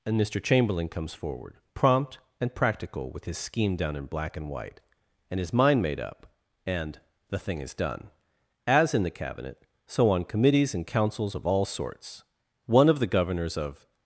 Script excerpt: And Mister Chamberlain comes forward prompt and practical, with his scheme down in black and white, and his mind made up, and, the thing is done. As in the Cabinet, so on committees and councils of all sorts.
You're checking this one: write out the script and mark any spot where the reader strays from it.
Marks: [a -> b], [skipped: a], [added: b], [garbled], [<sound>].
And Mister Chamberlain comes forward prompt and practical, with his scheme down in black and white, and his mind made up, and, the thing is done. As in the Cabinet, so on committees and councils of all sorts. [added: One of the governors of]